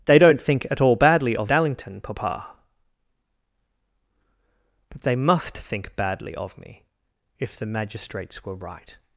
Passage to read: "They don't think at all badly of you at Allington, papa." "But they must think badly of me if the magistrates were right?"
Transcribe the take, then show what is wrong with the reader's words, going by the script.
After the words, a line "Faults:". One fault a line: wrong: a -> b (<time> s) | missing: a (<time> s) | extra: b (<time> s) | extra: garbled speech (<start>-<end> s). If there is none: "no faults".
"They don't think at all badly of Allington, papa." "But they must think badly of me if the magistrates were right?"
Faults:
missing: you at (1.5 s)